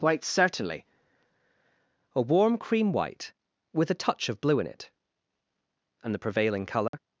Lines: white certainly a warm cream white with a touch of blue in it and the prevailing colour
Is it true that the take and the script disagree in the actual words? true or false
false